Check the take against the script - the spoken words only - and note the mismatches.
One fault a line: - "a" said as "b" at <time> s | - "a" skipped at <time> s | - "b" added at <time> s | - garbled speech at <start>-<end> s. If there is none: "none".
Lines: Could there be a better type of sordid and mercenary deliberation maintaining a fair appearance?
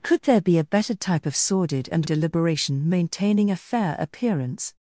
- "mercenary" skipped at 2.1 s